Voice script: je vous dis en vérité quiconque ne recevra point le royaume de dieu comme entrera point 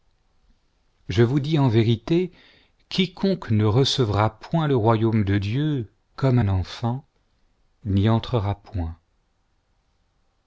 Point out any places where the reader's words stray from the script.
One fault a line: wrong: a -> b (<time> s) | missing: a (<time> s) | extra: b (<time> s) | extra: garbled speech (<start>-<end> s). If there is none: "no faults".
extra: un enfant n'y (6.4 s)